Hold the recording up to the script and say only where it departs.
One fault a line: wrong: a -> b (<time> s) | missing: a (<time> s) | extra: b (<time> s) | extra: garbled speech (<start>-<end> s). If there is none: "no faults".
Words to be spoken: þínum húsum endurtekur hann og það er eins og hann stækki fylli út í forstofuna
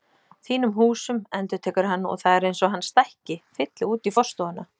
no faults